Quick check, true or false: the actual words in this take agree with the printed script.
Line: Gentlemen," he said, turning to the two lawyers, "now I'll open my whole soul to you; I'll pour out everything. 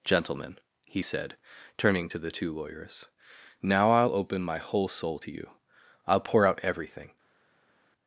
true